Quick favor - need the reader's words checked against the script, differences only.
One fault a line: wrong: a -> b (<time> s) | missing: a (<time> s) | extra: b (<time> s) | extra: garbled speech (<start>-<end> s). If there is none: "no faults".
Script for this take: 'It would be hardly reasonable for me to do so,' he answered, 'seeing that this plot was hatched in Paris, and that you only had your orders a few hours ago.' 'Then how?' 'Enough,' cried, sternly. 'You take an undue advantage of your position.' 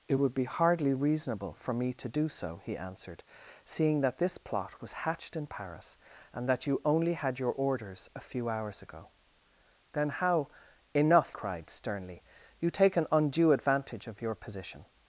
no faults